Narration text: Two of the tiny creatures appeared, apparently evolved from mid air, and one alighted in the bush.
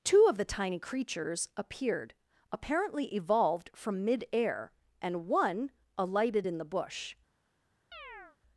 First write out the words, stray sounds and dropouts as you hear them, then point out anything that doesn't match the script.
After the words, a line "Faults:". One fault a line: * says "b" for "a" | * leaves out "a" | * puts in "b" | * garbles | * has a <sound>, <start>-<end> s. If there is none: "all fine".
Two of the tiny creatures appeared, apparently evolved from mid air, and one alighted in the bush.
Faults:
* has a chirp, 7.9-8.4 s